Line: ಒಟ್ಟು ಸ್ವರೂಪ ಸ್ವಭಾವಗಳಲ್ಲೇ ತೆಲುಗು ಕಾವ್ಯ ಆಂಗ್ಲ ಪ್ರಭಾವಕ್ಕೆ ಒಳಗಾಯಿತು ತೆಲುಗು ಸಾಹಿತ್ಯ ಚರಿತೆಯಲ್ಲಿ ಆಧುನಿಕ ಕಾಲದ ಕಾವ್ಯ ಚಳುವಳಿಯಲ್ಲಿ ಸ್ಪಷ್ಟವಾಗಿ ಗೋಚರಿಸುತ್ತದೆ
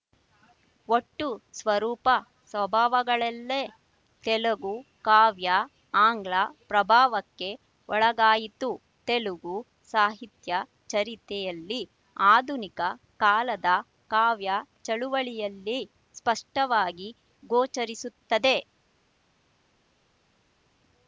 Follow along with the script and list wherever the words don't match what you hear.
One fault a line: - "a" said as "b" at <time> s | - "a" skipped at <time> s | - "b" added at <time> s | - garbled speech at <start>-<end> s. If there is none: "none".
none